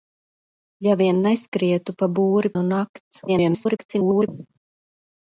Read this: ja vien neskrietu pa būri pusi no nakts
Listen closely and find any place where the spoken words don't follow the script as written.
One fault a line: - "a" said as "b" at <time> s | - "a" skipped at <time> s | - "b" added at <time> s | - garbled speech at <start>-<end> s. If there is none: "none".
- "pusi" skipped at 2.5 s
- garbled speech at 3.3-4.3 s